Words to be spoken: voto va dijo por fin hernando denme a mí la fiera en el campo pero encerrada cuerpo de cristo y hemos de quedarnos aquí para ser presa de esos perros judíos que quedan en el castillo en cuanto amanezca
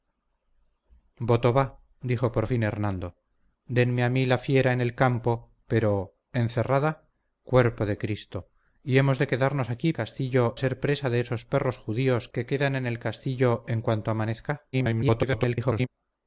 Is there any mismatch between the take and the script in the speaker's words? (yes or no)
yes